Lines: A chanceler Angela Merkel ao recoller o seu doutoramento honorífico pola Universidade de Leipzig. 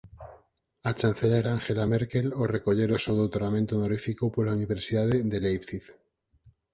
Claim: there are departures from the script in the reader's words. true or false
false